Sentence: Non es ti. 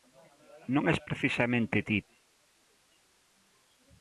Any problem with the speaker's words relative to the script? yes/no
yes